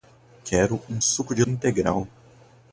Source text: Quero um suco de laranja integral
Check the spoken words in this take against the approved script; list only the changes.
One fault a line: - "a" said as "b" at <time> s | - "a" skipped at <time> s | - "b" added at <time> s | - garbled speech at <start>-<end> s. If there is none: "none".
- "laranja" skipped at 1.4 s